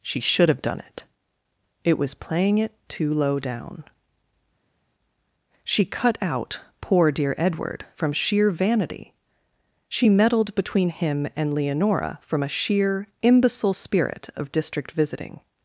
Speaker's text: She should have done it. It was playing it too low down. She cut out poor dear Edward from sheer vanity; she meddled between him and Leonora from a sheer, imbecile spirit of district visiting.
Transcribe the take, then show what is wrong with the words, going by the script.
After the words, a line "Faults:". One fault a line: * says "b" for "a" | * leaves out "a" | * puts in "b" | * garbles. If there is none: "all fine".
She should have done it. It was playing it too low down. She cut out poor dear Edward from sheer vanity; she meddled between him and Leonora from a sheer, imbecile spirit of district visiting.
Faults:
all fine